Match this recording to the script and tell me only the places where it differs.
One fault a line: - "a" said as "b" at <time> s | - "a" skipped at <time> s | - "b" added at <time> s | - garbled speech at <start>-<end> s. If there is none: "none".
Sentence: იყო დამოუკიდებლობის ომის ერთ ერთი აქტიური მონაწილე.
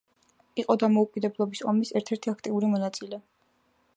none